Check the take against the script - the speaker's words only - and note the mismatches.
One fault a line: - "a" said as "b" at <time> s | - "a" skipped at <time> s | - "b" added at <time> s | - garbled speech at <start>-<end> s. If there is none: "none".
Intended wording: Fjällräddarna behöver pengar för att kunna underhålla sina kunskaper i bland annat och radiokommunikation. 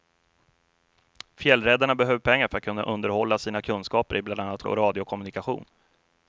none